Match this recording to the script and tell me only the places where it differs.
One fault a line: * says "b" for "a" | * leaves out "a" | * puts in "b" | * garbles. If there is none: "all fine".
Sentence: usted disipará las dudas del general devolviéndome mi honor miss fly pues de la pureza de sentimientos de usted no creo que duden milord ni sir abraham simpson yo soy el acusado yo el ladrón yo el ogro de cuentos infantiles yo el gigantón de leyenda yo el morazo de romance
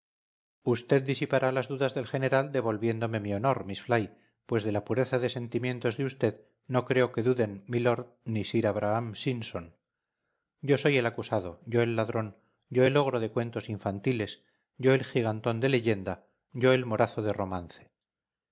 all fine